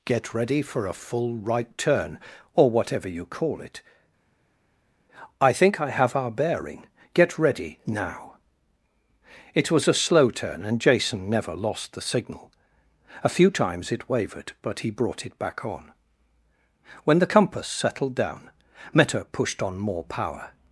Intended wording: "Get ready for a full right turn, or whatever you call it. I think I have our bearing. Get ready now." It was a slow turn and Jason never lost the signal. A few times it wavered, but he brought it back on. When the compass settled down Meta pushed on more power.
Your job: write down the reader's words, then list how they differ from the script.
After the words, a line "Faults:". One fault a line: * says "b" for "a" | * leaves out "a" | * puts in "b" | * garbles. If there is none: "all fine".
"Get ready for a full right turn, or whatever you call it. I think I have our bearing. Get ready now." It was a slow turn and Jason never lost the signal. A few times it wavered, but he brought it back on. When the compass settled down Meta pushed on more power.
Faults:
all fine